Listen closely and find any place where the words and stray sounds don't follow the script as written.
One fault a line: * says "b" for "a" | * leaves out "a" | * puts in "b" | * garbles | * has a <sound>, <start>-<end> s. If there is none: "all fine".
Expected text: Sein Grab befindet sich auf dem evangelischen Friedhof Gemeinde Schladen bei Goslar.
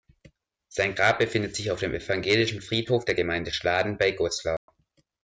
* puts in "der"
* has a dropout, 4.6-4.7 s